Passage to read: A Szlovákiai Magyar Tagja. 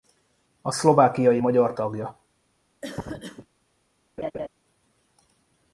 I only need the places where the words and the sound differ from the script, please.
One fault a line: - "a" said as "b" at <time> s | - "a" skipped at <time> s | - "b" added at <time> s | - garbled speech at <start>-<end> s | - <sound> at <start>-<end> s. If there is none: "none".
- cough at 2.8-3.5 s
- laugh at 4.2-4.5 s